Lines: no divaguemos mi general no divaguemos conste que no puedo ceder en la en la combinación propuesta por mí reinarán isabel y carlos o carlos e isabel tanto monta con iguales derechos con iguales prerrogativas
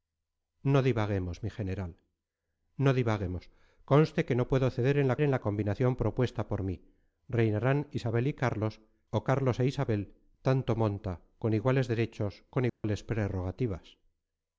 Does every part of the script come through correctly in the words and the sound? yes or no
no